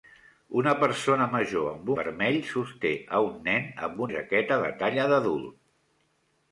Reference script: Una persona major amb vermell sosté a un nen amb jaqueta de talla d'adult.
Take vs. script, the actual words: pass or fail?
pass